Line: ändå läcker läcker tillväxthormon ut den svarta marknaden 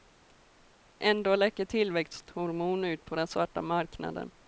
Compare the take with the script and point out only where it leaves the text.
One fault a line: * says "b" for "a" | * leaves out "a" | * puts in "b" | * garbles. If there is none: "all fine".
* leaves out "läcker"
* puts in "på"